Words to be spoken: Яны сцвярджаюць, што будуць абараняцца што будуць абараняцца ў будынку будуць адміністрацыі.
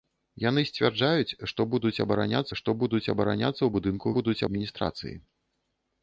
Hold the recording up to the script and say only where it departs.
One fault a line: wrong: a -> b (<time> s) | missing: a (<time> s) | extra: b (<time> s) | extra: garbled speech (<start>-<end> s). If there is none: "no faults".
no faults